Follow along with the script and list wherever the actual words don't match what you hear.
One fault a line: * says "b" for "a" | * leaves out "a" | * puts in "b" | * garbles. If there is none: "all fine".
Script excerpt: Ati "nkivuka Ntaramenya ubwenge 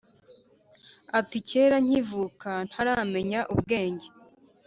* puts in "kera"